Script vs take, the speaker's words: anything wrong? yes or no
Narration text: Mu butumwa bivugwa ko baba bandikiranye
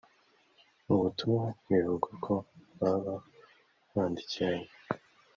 no